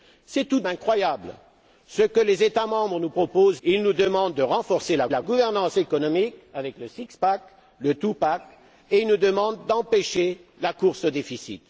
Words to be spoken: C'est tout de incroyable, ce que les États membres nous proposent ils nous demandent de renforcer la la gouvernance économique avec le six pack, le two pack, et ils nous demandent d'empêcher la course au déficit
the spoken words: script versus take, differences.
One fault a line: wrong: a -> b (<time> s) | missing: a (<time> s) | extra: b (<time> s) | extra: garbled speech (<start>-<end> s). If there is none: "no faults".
no faults